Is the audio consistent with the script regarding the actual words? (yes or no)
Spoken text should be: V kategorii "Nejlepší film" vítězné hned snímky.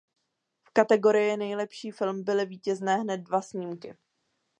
no